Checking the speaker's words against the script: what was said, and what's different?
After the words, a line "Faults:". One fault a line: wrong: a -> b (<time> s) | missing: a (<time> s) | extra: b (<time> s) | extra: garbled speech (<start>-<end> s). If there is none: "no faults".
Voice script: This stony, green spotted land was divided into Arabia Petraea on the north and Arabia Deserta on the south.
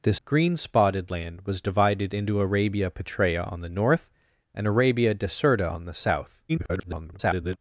This green spotted land was divided into Arabia Petraea on the north and Arabia Deserta on the south. [garbled]
Faults:
missing: stony (0.2 s)
extra: garbled speech (6.5-7.6 s)